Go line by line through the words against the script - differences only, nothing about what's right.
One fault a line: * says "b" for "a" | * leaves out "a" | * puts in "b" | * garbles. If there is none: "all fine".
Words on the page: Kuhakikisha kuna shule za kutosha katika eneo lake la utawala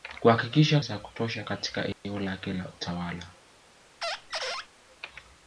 * leaves out "kuna shule"